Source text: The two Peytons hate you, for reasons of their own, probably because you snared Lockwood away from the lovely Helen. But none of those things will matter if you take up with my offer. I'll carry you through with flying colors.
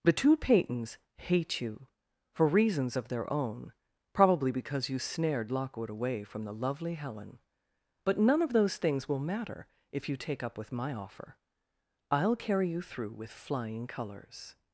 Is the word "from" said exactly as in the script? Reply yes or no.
yes